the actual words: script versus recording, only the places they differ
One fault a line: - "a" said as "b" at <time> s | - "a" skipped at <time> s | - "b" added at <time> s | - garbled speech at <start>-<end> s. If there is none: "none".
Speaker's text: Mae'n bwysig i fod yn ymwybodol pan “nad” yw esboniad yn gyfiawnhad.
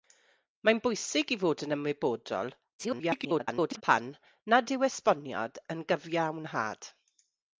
- garbled speech at 2.8-3.8 s